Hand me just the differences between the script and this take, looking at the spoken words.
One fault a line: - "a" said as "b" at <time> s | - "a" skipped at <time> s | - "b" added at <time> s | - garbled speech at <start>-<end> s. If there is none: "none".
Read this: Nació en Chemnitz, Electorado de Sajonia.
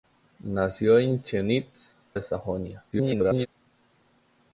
- "Electorado" skipped at 1.9 s
- garbled speech at 2.9-3.5 s